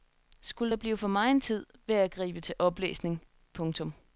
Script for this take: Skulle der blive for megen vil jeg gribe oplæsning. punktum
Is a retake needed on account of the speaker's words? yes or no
yes